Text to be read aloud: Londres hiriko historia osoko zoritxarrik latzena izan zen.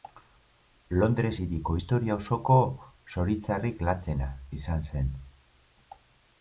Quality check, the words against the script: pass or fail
pass